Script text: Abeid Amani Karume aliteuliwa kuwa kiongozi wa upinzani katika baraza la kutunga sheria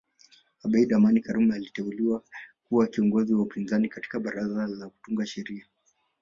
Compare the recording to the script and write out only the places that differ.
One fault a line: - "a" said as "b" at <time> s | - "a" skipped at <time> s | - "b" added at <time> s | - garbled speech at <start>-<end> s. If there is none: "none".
none